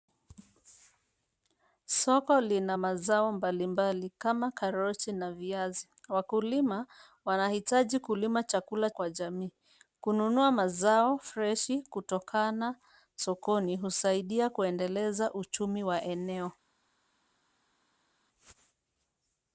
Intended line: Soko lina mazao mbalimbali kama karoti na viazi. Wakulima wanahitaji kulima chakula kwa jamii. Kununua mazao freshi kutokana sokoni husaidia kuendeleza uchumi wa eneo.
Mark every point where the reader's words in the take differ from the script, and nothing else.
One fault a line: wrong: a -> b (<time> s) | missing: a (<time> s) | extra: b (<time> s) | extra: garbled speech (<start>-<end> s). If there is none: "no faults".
no faults